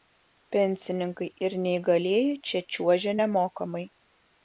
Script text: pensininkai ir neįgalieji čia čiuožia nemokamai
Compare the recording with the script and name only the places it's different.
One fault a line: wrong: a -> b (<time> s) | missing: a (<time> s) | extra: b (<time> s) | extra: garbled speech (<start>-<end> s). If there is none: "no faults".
no faults